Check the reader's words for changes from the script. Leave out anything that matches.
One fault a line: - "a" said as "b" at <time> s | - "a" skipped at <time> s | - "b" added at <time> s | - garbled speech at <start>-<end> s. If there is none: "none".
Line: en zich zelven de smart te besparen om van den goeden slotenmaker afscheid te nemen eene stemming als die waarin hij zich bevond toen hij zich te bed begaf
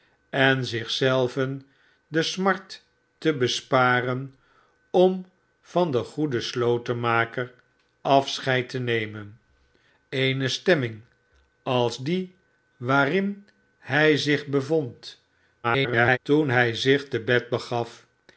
- garbled speech at 15.6-16.2 s